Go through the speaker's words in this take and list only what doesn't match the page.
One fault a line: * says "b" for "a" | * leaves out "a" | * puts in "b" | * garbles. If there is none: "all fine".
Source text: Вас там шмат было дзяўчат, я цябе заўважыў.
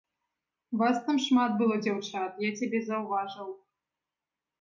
all fine